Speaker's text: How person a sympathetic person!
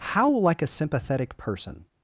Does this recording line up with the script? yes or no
no